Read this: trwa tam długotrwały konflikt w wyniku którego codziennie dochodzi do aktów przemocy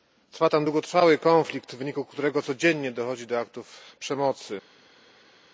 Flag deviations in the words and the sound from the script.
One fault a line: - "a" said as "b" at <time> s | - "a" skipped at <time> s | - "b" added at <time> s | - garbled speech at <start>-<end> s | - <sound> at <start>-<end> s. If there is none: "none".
none